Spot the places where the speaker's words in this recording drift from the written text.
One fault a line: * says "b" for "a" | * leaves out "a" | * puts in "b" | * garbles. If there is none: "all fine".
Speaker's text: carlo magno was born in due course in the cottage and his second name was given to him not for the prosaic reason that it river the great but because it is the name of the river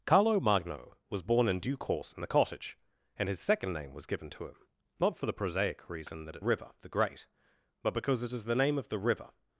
all fine